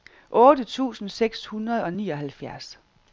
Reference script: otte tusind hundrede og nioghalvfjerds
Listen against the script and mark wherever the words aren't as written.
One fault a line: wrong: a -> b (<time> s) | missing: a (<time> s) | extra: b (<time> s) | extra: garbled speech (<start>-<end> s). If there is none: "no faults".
extra: seks (1.1 s)